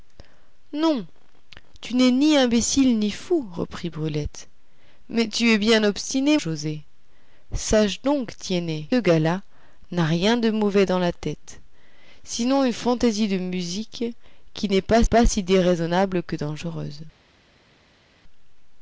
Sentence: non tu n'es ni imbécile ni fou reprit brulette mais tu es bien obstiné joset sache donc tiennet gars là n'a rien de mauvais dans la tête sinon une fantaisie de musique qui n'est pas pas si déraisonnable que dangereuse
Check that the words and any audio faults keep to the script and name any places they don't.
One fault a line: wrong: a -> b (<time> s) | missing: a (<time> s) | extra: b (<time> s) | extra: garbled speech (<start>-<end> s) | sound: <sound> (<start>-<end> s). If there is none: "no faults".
no faults